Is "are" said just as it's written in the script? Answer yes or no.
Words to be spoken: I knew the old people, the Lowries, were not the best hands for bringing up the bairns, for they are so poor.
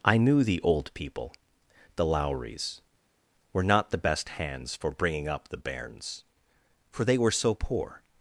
no